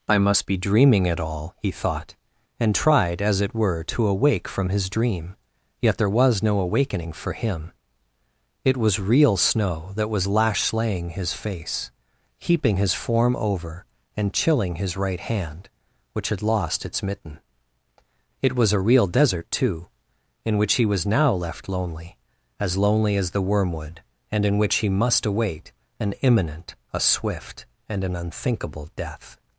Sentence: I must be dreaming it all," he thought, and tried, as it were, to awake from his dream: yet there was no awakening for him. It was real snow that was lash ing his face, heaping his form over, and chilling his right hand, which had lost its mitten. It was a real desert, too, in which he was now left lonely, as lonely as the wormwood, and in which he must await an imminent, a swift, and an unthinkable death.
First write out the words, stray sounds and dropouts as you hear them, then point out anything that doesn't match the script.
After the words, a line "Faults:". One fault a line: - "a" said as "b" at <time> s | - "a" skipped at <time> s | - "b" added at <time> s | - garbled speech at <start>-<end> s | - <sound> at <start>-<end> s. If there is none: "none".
I must be dreaming it all," he thought, and tried, as it were, to awake from his dream: yet there was no awakening for him. It was real snow that was lash slaying his face, heaping his form over, and chilling his right hand, which had lost its mitten. It was a real desert, too, in which he was now left lonely, as lonely as the wormwood, and in which he must await an imminent, a swift, and an unthinkable death.
Faults:
- "ing" said as "slaying" at 10.6 s